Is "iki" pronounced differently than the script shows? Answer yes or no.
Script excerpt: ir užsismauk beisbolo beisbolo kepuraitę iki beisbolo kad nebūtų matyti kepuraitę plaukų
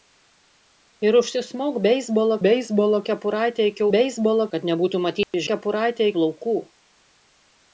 no